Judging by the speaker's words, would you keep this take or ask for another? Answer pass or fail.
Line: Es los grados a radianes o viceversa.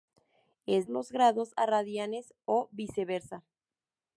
pass